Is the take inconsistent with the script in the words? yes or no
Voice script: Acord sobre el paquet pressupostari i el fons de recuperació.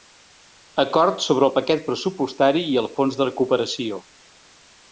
no